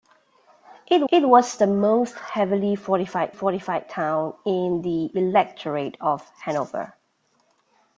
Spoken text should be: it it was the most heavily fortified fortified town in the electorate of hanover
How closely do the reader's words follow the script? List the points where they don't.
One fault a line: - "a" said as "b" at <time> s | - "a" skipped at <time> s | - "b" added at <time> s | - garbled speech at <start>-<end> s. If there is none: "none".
none